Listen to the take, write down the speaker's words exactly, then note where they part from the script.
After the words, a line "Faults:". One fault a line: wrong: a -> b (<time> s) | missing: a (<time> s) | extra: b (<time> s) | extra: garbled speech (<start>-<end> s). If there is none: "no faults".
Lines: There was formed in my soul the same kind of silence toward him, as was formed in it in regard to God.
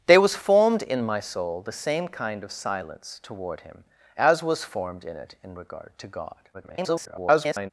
There was formed in my soul the same kind of silence toward him, as was formed in it in regard to God. [garbled]
Faults:
extra: garbled speech (6.5-7.7 s)